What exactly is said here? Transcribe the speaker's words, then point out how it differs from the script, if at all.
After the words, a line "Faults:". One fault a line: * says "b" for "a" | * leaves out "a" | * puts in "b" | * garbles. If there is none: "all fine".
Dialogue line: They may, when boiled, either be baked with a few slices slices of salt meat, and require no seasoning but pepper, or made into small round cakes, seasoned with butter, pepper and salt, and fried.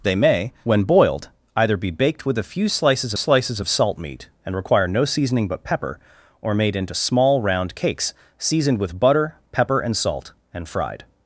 They may, when boiled, either be baked with a few slices slices of salt meat, and require no seasoning but pepper, or made into small round cakes, seasoned with butter, pepper and salt, and fried.
Faults:
all fine